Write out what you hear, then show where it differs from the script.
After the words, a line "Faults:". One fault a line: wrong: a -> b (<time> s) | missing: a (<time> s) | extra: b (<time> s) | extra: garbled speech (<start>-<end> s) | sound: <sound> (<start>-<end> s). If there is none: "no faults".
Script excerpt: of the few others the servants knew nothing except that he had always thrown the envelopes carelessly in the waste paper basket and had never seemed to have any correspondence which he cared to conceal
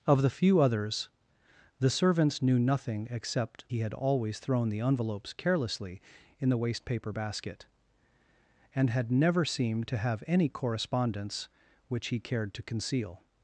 of the few others the servants knew nothing except he had always thrown the envelopes carelessly in the waste paper basket and had never seemed to have any correspondence which he cared to conceal
Faults:
missing: that (3.6 s)